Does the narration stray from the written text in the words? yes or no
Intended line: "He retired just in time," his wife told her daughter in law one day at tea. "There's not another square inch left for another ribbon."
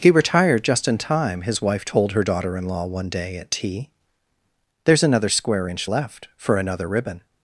yes